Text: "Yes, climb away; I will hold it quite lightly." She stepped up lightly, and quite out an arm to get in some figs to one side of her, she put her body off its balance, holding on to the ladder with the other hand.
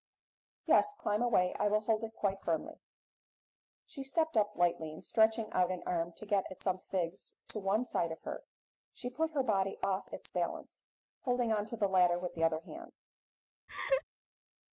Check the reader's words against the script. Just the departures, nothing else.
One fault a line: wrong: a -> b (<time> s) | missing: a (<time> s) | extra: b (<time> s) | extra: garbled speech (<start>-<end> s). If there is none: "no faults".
wrong: lightly -> firmly (2.4 s)
wrong: quite -> stretching (5.0 s)
wrong: in -> at (6.5 s)